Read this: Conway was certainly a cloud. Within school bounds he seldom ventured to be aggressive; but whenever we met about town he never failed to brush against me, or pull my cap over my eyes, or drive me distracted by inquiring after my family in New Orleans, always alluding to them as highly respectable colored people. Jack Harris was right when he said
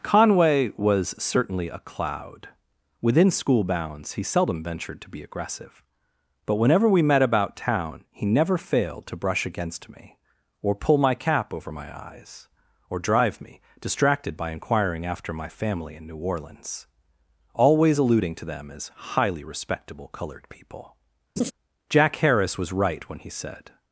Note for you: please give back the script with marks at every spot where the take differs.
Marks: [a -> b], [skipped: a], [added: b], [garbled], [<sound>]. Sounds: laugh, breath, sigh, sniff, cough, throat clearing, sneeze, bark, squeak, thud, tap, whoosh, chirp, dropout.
Conway was certainly a cloud. Within school bounds he seldom ventured to be aggressive; but whenever we met about town he never failed to brush against me, or pull my cap over my eyes, or drive me distracted by inquiring after my family in New Orleans, always alluding to them as highly respectable colored people. [laugh] Jack Harris was right when he said